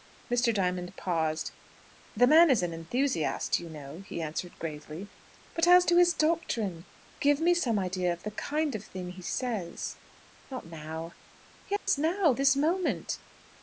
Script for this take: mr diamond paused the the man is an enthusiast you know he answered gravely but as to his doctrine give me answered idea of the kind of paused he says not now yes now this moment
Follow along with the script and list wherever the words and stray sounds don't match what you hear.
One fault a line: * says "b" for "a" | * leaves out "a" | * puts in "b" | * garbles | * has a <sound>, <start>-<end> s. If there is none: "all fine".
* leaves out "the"
* says "some" for "answered"
* says "thing" for "paused"
* has a dropout, 11.8-11.9 s